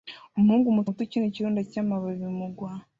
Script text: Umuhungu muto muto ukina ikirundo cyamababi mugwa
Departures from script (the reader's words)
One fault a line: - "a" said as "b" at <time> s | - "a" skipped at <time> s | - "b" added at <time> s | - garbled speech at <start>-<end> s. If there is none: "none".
none